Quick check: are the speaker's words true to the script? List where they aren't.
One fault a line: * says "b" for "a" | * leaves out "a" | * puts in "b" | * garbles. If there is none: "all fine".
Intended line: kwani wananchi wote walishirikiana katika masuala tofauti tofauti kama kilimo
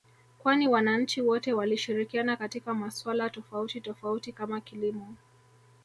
all fine